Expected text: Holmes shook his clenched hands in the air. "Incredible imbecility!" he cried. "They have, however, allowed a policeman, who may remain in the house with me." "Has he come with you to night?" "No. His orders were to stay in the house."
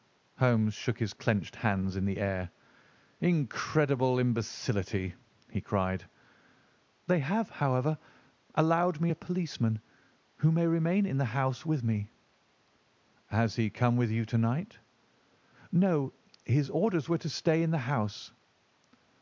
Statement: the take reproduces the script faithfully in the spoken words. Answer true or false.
false